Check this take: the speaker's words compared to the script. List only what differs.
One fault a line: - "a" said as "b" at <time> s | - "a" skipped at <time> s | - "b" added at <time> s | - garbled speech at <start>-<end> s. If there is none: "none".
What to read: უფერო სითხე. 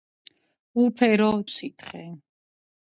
none